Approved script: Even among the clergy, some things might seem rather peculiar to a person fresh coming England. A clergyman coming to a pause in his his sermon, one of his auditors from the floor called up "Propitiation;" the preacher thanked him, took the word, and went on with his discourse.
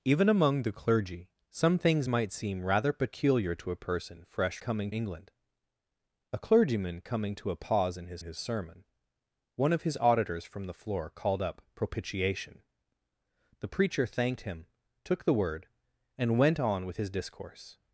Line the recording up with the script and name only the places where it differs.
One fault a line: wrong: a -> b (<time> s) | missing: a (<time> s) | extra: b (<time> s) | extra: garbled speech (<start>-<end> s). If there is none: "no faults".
no faults